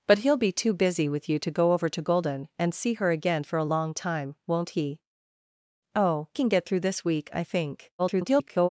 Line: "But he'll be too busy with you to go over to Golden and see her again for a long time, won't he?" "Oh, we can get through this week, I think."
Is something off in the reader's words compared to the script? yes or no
yes